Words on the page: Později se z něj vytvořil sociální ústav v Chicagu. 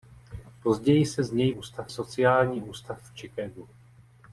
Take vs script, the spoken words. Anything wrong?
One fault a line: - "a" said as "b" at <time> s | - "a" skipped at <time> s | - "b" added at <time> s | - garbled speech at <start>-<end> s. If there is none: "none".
- "vytvořil" said as "ústav" at 1.5 s